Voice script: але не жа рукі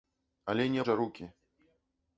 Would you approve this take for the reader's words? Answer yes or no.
yes